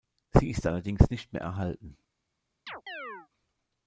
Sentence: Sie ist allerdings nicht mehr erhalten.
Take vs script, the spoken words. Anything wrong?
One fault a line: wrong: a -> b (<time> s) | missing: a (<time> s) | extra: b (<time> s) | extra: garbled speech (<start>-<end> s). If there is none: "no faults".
no faults